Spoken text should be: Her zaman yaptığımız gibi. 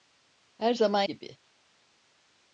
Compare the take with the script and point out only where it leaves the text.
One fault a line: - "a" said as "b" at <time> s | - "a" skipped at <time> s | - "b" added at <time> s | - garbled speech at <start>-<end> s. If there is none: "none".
- "yaptığımız" skipped at 1.0 s